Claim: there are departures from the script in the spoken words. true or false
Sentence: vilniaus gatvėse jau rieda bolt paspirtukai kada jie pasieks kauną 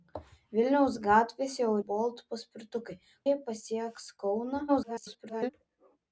true